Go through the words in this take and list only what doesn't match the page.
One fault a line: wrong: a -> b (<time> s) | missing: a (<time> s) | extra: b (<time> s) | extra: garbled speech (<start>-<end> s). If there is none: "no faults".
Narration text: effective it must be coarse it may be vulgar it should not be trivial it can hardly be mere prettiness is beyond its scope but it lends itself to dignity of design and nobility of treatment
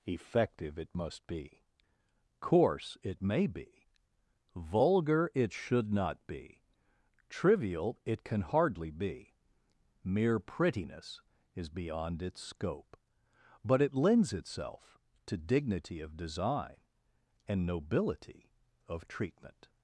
no faults